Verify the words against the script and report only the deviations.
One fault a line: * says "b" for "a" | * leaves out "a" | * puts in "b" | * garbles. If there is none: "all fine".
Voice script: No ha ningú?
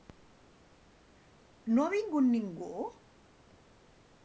* puts in "vingut"